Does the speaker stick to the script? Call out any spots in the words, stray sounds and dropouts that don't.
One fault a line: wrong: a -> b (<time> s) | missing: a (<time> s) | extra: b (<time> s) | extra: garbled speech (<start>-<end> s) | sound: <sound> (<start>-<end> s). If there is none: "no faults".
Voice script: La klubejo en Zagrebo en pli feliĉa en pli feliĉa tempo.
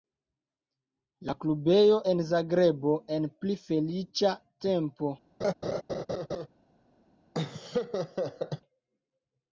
missing: en pli feliĉa (4.3 s)
sound: laugh (5.4-6.5 s)
sound: laugh (7.3-8.6 s)